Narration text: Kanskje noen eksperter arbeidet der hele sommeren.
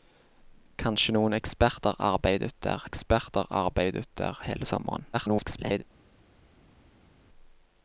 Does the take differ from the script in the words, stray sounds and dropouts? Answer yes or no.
yes